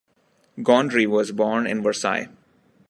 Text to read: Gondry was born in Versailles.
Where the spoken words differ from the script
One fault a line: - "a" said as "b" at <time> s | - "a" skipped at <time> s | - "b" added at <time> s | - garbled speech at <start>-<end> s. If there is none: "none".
none